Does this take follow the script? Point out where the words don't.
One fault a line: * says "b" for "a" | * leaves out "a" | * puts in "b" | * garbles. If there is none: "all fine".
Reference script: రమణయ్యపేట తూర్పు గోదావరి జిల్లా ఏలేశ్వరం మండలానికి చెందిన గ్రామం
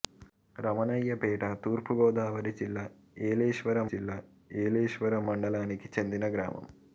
* puts in "జిల్లా ఏలేశ్వరం"